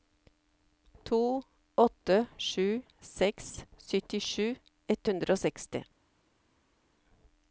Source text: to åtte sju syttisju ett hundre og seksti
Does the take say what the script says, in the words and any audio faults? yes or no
no